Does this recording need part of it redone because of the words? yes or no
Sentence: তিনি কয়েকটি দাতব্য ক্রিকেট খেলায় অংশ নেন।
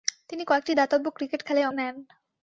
yes